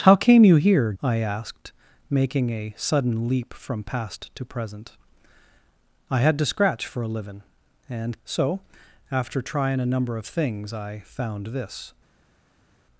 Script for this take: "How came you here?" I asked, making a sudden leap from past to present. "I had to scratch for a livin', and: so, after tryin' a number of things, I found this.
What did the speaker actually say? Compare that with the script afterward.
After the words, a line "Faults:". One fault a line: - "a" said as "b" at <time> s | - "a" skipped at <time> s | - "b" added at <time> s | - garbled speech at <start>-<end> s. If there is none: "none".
"How came you here?" I asked, making a sudden leap from past to present. "I had to scratch for a livin', and: so, after tryin' a number of things, I found this.
Faults:
none